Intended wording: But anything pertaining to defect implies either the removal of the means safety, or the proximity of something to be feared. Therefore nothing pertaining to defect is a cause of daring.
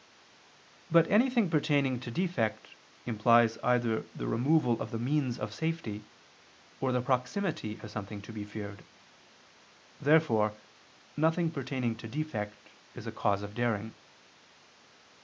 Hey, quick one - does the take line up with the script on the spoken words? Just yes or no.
no